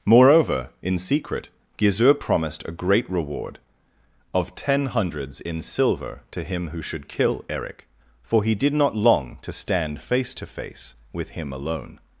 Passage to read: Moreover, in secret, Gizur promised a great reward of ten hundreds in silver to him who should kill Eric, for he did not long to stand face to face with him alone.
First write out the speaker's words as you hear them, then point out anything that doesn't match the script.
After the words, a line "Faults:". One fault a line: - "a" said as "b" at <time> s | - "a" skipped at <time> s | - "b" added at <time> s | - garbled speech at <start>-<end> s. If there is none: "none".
Moreover, in secret, Gizur promised a great reward of ten hundreds in silver to him who should kill Eric, for he did not long to stand face to face with him alone.
Faults:
none